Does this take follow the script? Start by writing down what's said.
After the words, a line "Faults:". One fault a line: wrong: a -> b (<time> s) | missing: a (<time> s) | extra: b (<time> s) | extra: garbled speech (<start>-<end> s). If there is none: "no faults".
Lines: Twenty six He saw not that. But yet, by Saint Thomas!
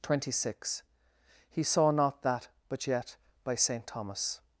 Twenty six He saw not that. But yet, by Saint Thomas!
Faults:
no faults